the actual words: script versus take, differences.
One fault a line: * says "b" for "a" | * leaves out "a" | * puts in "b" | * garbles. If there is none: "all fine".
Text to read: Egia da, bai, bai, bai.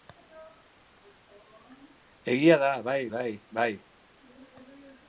all fine